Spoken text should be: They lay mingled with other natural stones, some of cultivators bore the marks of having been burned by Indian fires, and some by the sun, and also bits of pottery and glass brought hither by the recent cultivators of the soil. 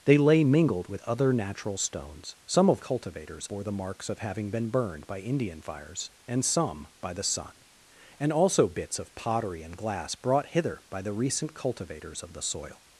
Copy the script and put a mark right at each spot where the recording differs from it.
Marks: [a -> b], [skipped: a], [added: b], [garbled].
They lay mingled with other natural stones, some of cultivators bore the marks of having been burned by Indian fires, and some by the sun, and also bits of pottery and glass brought hither by the recent cultivators of the soil.